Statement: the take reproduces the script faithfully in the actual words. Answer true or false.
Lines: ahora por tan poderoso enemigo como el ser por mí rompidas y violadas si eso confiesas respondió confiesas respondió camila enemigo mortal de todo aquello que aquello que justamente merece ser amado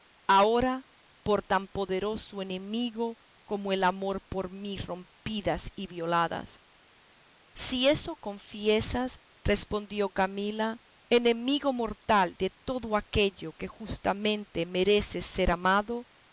false